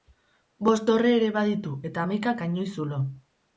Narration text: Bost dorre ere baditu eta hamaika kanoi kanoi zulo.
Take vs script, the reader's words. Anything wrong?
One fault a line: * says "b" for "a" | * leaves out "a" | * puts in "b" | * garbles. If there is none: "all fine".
* leaves out "kanoi"